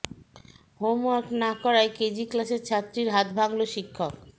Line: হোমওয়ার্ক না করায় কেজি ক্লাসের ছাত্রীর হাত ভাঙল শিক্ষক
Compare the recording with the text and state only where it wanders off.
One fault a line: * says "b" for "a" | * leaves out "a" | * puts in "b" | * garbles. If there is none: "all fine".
all fine